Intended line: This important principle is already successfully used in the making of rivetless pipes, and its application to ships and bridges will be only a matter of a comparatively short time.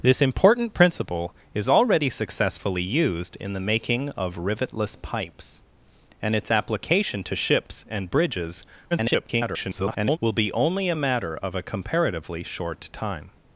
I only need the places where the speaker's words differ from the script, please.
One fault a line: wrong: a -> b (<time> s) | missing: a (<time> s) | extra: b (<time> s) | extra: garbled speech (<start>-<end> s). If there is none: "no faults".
extra: garbled speech (8.9-10.2 s)